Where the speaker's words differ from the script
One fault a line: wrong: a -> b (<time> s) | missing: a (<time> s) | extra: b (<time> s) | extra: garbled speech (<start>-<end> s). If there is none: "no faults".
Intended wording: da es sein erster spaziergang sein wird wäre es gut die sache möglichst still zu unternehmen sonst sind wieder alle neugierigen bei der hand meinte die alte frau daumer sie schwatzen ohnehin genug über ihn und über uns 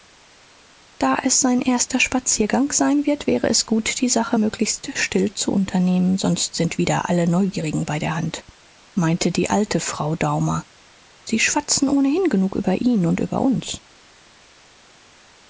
no faults